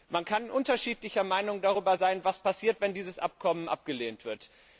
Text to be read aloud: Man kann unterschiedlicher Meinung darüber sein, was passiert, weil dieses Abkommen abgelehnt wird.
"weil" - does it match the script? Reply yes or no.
no